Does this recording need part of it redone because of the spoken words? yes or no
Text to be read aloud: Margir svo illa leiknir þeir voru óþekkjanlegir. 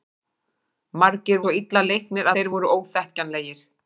no